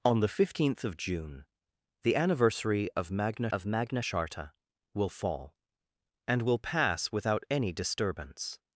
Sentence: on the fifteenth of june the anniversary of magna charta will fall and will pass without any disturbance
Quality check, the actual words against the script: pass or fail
fail